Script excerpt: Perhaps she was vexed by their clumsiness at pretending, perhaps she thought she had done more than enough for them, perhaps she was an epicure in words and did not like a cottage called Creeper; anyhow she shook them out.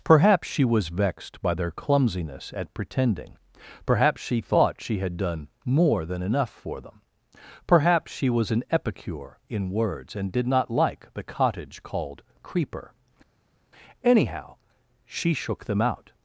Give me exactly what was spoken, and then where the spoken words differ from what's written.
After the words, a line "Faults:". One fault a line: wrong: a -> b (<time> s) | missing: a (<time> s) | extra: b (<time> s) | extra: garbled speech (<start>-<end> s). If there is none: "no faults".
Perhaps she was vexed by their clumsiness at pretending, perhaps she thought she had done more than enough for them, perhaps she was an epicure in words and did not like the cottage called Creeper; anyhow she shook them out.
Faults:
wrong: a -> the (11.1 s)